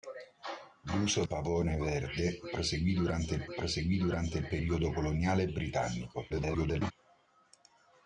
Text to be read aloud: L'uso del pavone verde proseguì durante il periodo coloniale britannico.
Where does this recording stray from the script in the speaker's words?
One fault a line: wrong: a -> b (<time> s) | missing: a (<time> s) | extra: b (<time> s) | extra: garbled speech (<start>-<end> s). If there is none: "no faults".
missing: del (1.2 s)
extra: proseguì durante il (3.6 s)
extra: garbled speech (6.3-6.9 s)